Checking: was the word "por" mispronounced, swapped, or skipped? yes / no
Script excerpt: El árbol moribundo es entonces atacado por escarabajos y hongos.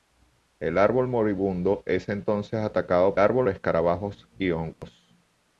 yes